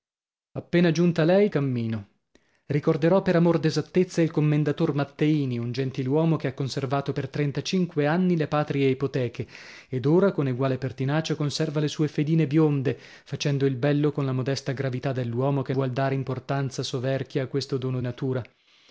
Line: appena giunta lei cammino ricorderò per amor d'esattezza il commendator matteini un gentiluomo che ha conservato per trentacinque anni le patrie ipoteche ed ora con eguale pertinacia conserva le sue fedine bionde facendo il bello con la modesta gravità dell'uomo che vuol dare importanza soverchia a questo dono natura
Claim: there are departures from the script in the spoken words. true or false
false